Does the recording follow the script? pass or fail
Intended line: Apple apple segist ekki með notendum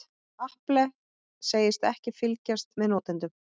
fail